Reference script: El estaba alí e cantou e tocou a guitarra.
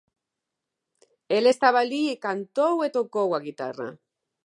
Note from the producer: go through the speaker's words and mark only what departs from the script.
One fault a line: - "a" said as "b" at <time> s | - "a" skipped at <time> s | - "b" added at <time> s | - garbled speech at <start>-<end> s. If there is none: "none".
none